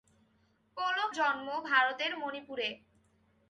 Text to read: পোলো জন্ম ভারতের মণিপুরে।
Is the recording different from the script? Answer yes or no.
no